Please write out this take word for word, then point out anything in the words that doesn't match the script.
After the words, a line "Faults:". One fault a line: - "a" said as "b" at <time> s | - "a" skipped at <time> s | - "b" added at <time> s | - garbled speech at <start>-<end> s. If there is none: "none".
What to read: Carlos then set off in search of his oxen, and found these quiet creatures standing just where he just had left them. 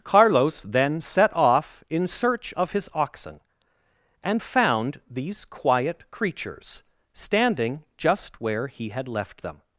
Carlos then set off in search of his oxen, and found these quiet creatures standing just where he had left them.
Faults:
- "just" skipped at 8.9 s